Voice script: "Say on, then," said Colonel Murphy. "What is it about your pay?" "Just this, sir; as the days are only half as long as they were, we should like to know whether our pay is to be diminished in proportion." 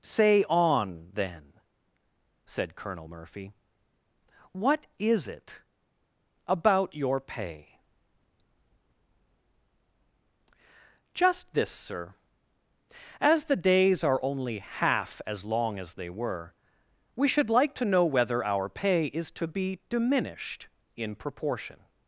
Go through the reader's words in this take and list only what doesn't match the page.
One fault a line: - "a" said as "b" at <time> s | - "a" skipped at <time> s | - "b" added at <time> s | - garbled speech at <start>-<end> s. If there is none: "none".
none